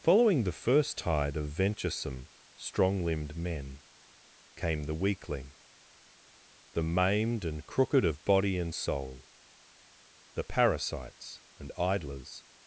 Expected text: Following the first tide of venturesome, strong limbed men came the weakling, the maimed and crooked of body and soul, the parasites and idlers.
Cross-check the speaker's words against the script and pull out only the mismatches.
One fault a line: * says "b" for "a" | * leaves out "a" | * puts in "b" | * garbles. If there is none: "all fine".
all fine